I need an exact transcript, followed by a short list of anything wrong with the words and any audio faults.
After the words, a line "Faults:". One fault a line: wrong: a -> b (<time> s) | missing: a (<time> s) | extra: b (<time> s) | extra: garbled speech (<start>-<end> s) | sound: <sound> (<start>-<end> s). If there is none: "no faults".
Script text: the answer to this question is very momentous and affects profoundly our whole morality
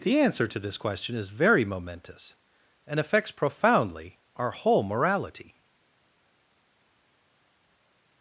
the answer to this question is very momentous and affects profoundly our whole morality
Faults:
no faults